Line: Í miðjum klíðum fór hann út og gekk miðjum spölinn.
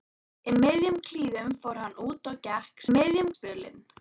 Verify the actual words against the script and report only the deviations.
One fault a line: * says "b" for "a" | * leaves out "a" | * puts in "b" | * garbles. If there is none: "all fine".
all fine